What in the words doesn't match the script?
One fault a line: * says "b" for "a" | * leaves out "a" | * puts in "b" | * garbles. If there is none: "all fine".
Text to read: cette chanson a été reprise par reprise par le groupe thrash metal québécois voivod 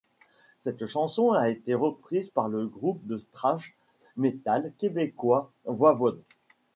* leaves out "reprise par"
* puts in "de"